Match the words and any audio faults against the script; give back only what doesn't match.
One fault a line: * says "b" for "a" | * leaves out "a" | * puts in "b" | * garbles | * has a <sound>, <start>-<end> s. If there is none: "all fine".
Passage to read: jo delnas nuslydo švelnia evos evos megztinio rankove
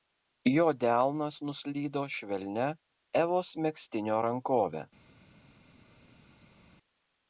* leaves out "evos"